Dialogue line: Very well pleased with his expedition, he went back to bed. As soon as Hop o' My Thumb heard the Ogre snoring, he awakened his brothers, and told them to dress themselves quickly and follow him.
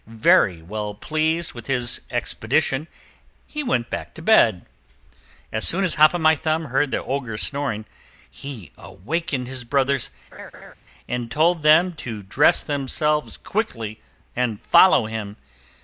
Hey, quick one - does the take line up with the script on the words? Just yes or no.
yes